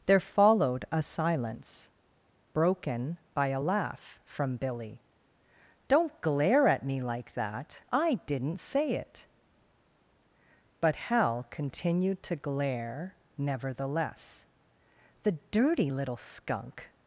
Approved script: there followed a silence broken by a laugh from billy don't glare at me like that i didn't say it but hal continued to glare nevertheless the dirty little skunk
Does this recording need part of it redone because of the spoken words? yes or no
no